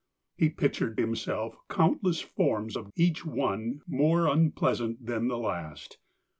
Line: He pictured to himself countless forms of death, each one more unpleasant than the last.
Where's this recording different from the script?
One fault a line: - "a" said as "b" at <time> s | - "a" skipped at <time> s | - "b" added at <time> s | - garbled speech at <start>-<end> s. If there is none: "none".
- "to" skipped at 1.0 s
- "death" skipped at 2.9 s